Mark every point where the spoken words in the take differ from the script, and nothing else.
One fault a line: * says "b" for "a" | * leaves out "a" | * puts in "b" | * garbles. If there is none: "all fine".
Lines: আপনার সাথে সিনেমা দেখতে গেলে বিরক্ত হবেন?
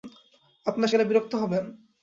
* leaves out "সাথে সিনেমা দেখতে"